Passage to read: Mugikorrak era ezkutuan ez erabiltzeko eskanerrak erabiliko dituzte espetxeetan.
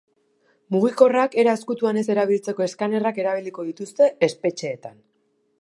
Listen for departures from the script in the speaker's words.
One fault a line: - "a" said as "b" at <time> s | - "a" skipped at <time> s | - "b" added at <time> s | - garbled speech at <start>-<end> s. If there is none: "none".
none